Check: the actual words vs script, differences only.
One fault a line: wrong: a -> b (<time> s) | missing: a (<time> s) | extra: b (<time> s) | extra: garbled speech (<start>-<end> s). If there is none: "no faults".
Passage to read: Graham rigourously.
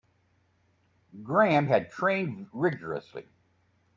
extra: had trained (1.7 s)